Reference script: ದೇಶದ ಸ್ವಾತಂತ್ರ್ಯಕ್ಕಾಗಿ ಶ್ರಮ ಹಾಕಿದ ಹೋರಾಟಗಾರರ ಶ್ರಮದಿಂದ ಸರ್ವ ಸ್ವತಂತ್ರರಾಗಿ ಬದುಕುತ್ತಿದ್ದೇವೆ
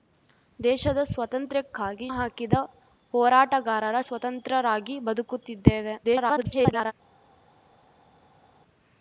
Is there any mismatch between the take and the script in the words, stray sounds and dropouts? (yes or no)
yes